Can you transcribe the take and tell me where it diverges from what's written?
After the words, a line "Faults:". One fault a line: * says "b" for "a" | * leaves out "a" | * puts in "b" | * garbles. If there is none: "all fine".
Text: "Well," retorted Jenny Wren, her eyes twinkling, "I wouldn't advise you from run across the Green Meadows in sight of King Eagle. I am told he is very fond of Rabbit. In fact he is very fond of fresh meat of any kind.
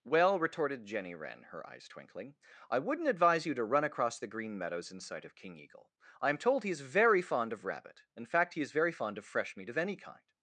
"Well," retorted Jenny Wren, her eyes twinkling, "I wouldn't advise you to run across the Green Meadows in sight of King Eagle. I am told he is very fond of Rabbit. In fact he is very fond of fresh meat of any kind.
Faults:
* says "to" for "from"